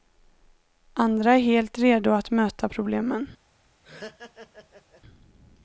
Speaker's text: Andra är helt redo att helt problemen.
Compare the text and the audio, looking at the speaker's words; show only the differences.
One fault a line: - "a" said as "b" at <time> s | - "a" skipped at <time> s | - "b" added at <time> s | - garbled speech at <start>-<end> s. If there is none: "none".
- "helt" said as "möta" at 2.3 s